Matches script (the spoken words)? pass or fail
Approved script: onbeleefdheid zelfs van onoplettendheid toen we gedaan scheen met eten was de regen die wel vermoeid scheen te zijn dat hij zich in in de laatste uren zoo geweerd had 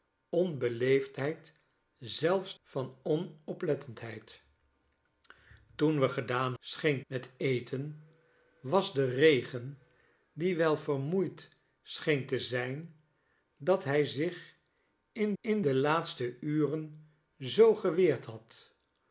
pass